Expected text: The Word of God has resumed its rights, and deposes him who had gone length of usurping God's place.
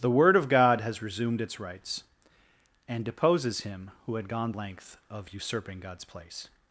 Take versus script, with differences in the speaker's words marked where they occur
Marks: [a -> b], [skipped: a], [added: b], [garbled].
The Word of God has resumed its rights, and deposes him who had gone length of usurping God's place.